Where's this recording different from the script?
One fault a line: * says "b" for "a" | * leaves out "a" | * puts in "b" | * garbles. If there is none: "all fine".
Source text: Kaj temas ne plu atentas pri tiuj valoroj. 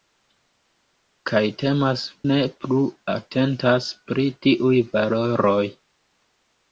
all fine